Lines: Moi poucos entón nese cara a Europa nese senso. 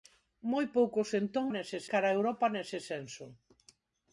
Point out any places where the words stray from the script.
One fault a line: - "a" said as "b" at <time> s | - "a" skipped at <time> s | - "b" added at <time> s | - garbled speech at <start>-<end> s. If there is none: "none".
none